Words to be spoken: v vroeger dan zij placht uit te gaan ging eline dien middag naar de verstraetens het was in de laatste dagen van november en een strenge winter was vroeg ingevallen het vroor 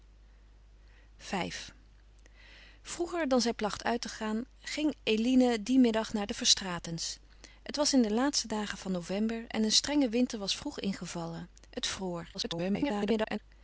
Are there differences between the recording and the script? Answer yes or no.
yes